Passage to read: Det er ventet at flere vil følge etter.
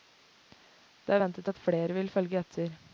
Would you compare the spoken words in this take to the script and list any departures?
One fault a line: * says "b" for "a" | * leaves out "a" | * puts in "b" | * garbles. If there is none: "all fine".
all fine